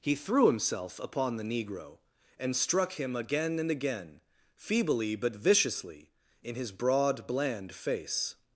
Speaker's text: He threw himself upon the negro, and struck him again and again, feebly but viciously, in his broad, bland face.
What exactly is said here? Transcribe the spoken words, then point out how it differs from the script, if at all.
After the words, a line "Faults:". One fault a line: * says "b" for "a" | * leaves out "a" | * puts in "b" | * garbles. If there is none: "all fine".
He threw himself upon the negro, and struck him again and again, feebly but viciously, in his broad, bland face.
Faults:
all fine